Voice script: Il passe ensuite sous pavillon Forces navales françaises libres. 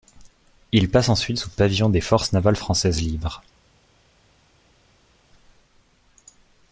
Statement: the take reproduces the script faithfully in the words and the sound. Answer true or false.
false